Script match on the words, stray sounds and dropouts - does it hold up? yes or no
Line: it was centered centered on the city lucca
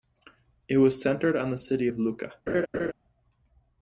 no